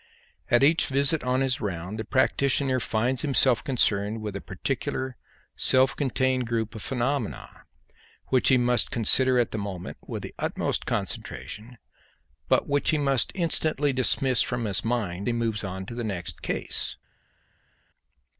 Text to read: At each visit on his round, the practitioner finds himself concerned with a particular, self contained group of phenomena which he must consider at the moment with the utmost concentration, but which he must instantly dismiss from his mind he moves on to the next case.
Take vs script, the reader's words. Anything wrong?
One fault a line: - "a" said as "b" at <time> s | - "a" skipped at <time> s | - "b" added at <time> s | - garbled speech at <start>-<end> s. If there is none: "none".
none